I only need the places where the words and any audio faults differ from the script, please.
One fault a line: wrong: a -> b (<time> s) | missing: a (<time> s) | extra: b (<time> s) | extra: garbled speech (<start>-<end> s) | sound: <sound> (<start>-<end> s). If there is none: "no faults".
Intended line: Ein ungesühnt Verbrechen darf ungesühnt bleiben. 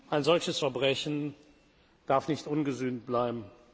wrong: ungesühnt -> solches (0.2 s)
extra: nicht (2.3 s)